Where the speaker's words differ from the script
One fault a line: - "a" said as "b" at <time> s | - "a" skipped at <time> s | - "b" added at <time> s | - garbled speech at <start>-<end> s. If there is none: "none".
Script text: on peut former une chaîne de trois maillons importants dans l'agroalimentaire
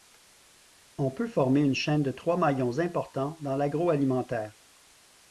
none